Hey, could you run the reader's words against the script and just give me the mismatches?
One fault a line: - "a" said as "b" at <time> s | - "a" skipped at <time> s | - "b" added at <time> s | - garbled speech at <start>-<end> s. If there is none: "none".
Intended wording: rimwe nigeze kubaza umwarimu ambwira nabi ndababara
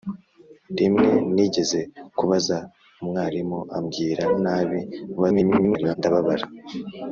- garbled speech at 5.2-6.0 s